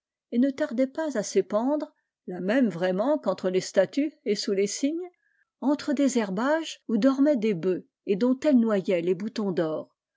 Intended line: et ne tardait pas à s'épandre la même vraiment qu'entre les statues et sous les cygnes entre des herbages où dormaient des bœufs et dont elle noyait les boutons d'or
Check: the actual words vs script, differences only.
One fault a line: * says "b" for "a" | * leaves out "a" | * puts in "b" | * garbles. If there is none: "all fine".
all fine